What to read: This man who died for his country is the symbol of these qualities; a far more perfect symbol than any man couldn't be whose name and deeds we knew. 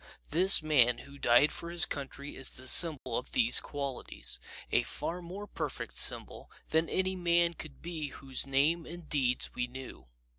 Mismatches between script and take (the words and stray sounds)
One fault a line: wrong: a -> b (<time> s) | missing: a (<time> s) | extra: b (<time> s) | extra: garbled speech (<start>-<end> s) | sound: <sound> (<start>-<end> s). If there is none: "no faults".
sound: dropout (3.0-3.1 s)
wrong: couldn't -> could (7.5 s)